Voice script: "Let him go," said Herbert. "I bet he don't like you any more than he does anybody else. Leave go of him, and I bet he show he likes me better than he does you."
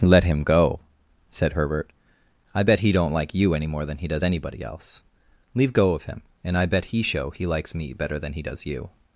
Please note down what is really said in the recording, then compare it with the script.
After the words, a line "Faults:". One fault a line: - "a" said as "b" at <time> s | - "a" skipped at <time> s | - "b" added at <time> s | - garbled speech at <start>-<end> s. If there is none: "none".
"Let him go," said Herbert. "I bet he don't like you any more than he does anybody else. Leave go of him, and I bet he show he likes me better than he does you."
Faults:
none